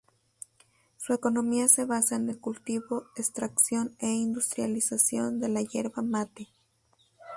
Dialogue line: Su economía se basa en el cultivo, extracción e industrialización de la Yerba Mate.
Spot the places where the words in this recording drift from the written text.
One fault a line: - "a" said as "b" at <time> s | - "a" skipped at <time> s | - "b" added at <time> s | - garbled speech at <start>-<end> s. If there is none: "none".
none